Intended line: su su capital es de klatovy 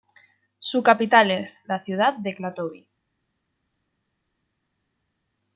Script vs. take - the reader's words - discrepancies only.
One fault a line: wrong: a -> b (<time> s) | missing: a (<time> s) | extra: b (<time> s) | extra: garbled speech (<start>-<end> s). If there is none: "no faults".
missing: su (0.8 s)
extra: la ciudad (1.7 s)